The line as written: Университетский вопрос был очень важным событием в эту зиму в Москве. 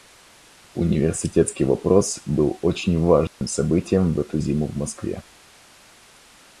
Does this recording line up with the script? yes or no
yes